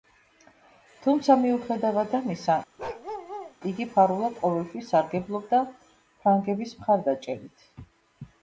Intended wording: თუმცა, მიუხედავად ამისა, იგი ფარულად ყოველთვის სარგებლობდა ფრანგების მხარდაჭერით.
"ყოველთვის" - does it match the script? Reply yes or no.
yes